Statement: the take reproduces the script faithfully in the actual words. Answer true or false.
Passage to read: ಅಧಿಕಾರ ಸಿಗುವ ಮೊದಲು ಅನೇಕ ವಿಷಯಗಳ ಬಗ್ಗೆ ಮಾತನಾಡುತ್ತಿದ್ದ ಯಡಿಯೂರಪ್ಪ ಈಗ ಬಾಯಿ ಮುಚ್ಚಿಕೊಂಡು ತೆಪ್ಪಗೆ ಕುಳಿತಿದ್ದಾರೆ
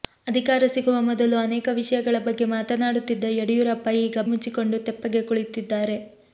false